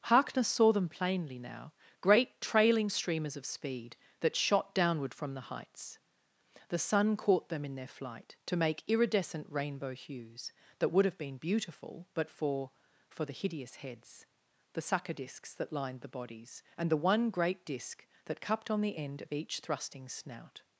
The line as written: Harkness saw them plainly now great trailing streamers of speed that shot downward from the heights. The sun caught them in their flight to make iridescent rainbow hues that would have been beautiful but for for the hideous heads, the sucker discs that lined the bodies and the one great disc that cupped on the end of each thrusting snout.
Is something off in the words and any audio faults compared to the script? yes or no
no